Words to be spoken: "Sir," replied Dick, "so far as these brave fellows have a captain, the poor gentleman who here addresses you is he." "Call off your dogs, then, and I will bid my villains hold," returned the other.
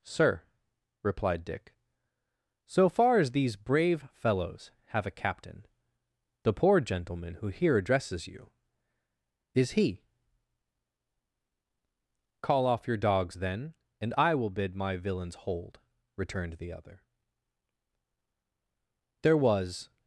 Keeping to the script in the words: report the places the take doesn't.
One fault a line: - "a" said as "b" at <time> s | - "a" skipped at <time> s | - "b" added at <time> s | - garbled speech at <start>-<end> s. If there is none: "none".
- "There was" added at 19.2 s